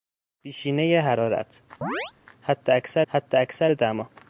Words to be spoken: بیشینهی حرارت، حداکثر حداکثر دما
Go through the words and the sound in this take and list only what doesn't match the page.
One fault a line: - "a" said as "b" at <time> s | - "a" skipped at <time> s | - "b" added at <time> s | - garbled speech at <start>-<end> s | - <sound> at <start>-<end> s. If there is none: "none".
- chirp at 1.8-2.1 s